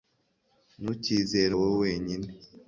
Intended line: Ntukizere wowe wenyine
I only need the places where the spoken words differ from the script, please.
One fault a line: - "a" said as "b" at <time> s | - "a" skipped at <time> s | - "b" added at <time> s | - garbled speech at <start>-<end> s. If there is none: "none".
none